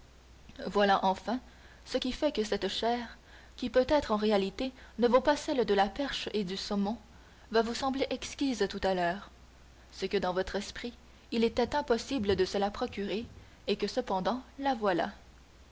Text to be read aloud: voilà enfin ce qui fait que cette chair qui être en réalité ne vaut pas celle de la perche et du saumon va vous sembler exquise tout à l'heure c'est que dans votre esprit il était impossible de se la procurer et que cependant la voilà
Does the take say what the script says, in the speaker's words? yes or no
no